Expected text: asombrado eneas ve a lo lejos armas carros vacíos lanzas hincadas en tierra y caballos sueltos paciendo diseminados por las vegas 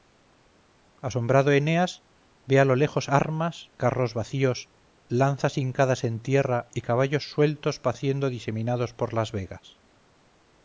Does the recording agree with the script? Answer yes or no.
yes